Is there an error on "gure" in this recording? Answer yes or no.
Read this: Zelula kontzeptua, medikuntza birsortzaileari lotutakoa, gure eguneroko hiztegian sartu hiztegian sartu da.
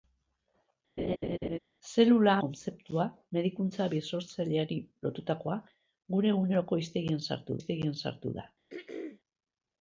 no